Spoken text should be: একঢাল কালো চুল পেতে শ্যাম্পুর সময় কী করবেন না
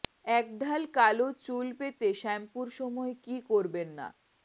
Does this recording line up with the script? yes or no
yes